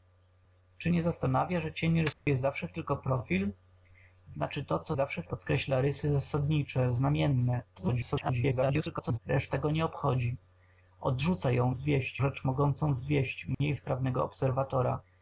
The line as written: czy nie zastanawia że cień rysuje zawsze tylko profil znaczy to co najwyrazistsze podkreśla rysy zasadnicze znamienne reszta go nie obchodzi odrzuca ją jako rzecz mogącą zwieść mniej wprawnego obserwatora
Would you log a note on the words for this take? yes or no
yes